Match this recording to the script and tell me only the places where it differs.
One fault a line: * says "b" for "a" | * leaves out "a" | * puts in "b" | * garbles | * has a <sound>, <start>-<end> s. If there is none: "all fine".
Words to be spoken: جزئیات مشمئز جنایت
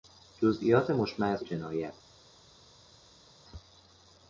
all fine